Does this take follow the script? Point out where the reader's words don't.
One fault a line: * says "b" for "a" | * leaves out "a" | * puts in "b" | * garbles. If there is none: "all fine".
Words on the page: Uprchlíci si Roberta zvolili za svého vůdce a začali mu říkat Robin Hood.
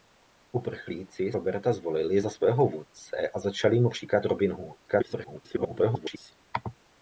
* leaves out "si"
* garbles